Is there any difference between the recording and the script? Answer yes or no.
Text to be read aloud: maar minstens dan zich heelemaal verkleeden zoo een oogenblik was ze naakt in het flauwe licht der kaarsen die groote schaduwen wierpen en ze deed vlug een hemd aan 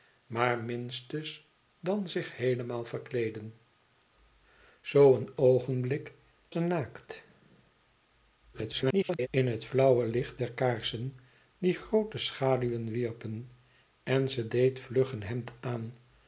yes